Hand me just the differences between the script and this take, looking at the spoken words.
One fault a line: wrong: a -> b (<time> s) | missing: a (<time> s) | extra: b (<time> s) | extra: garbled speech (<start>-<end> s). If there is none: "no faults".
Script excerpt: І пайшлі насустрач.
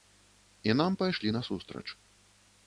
extra: нам (0.7 s)